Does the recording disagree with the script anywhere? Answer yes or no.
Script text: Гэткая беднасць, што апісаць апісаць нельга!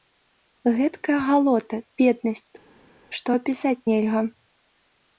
yes